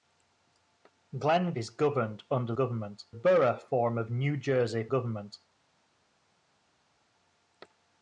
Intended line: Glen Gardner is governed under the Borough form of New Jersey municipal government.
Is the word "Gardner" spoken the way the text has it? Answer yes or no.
no